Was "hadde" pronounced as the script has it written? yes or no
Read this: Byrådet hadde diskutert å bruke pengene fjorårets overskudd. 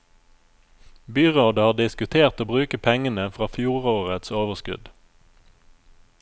no